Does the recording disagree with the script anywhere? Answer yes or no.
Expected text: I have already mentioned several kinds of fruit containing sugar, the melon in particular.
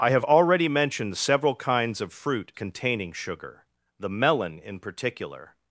no